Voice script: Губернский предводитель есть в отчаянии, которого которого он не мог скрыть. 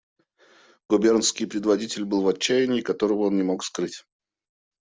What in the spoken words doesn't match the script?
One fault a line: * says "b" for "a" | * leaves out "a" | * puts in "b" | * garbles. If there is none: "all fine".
* says "был" for "есть"
* leaves out "которого"